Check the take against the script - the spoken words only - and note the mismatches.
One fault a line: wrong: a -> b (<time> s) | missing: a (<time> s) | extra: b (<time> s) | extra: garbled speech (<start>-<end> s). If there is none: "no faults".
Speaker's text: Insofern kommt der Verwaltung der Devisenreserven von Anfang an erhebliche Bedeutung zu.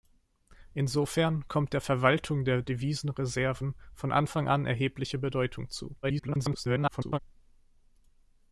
extra: garbled speech (6.0-7.2 s)